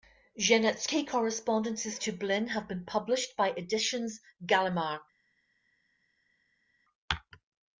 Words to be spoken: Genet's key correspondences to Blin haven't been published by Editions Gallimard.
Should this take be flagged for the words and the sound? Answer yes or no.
yes